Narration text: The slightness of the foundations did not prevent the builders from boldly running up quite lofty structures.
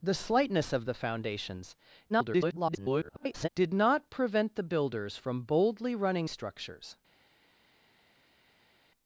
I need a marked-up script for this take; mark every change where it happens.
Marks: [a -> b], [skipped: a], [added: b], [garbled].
The slightness of the foundations [garbled] did not prevent the builders from boldly running [skipped: up quite lofty] structures.